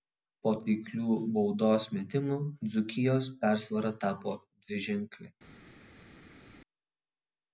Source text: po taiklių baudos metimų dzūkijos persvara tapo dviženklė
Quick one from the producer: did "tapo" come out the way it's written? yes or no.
yes